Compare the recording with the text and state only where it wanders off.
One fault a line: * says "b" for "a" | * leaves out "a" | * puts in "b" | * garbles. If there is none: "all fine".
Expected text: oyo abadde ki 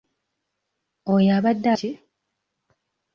all fine